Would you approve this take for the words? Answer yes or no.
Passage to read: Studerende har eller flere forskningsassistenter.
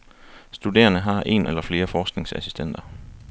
no